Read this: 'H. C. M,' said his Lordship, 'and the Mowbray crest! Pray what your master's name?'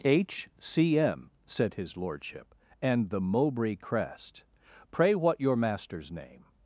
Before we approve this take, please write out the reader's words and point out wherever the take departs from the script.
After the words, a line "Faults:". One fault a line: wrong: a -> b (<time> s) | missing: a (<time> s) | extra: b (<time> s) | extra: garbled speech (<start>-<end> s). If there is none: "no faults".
'H. C. M,' said his Lordship, 'and the Mowbray crest! Pray what your master's name?'
Faults:
no faults